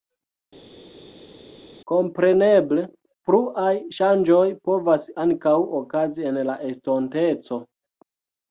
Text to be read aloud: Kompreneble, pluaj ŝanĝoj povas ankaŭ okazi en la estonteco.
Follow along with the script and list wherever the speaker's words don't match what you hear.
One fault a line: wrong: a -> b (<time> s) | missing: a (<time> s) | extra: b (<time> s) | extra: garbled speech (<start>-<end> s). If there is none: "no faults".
no faults